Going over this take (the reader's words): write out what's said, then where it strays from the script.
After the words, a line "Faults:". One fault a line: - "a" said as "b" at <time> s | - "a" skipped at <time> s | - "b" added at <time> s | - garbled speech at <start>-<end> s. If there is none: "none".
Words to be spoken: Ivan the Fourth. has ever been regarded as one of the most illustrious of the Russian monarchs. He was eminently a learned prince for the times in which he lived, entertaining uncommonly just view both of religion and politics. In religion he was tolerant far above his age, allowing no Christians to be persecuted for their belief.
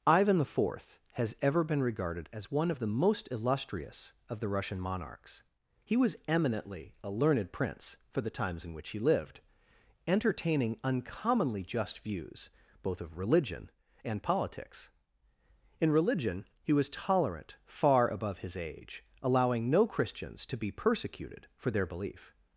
Ivan the Fourth. has ever been regarded as one of the most illustrious of the Russian monarchs. He was eminently a learned prince for the times in which he lived, entertaining uncommonly just views both of religion and politics. In religion he was tolerant far above his age, allowing no Christians to be persecuted for their belief.
Faults:
- "view" said as "views" at 12.0 s